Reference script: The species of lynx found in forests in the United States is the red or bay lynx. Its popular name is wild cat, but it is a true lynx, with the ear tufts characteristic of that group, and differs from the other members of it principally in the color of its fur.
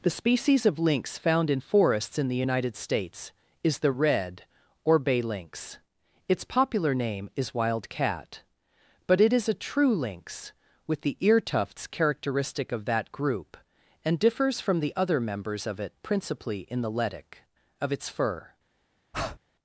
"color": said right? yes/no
no